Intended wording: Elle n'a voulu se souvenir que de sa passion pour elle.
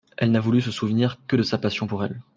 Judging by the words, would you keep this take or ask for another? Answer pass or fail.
pass